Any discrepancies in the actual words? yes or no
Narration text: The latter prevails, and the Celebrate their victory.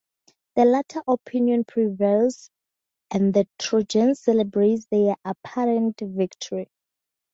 yes